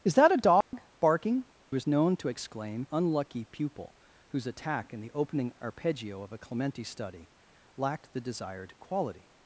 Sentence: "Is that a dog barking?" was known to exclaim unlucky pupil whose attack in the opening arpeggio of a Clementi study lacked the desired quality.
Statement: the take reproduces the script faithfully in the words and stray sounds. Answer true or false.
false